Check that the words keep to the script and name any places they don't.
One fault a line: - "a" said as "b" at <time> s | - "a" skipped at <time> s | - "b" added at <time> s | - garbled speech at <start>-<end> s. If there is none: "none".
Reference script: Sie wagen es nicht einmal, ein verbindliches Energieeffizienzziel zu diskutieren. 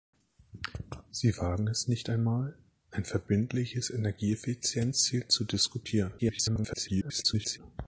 - garbled speech at 6.2-7.6 s